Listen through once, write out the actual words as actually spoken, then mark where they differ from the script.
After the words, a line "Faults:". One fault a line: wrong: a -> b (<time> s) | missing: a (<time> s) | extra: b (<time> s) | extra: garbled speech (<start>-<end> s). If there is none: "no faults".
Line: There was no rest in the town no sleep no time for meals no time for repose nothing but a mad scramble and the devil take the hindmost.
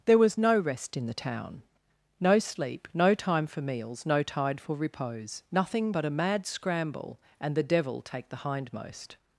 There was no rest in the town no sleep no time for meals no tide for repose nothing but a mad scramble and the devil take the hindmost.
Faults:
wrong: time -> tide (4.2 s)